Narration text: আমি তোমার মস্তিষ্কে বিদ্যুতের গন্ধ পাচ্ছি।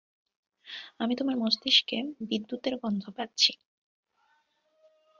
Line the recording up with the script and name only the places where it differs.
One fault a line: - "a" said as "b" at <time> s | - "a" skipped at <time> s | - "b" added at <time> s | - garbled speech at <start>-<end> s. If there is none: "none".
none